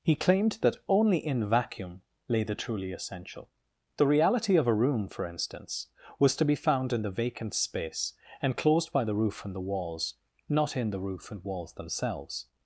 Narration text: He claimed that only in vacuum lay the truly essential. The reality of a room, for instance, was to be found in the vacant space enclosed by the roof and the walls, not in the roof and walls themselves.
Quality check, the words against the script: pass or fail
pass